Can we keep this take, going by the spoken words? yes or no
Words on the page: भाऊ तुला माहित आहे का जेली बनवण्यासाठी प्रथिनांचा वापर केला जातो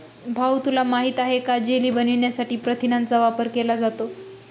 yes